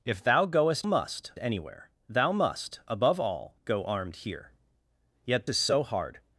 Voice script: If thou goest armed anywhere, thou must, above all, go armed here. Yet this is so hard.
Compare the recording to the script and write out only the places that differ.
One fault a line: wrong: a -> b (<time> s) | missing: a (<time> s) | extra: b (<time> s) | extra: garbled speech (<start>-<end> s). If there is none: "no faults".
wrong: armed -> must (0.8 s)
missing: this (5.5 s)